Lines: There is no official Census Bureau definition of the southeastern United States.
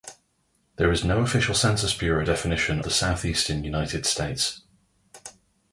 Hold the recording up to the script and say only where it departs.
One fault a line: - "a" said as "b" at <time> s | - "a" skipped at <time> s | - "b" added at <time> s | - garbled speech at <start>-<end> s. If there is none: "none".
- "of" skipped at 2.8 s